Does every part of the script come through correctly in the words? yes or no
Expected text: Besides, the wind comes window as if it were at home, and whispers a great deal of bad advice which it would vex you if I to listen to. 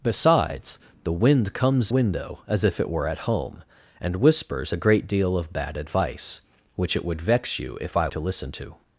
yes